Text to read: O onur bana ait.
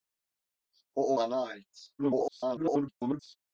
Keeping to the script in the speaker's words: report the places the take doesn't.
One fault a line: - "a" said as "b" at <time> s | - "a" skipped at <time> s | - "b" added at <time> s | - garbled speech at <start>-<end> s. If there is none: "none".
- "onur" skipped at 1.1 s
- garbled speech at 2.0-3.4 s